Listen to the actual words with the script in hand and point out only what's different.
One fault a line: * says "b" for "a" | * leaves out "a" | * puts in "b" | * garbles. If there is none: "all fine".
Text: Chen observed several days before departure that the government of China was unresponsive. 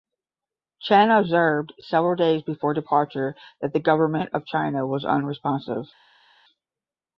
all fine